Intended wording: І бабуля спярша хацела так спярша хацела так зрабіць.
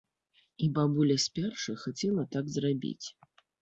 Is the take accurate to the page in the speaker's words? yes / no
no